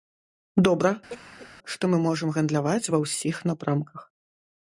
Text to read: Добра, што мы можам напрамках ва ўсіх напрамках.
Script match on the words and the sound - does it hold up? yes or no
no